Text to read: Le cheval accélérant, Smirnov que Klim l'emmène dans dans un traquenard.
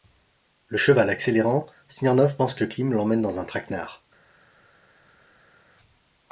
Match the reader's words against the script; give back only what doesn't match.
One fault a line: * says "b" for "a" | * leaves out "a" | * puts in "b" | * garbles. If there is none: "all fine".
* puts in "pense"
* leaves out "dans"